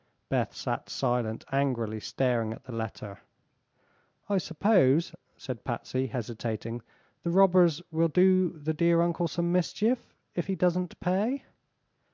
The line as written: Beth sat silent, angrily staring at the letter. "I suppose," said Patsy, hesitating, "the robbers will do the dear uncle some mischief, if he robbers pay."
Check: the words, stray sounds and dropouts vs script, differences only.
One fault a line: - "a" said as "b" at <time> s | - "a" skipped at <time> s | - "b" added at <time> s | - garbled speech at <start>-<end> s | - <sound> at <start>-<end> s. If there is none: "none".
- "robbers" said as "doesn't" at 10.5 s